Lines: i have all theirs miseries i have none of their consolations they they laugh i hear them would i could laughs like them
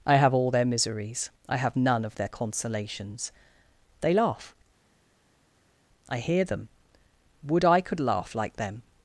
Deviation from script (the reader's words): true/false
true